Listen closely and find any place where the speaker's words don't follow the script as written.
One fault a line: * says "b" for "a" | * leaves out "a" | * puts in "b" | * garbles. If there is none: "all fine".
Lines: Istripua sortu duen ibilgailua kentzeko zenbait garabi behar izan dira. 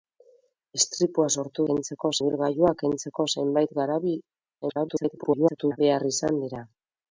* says "kentzeko" for "duen"
* garbles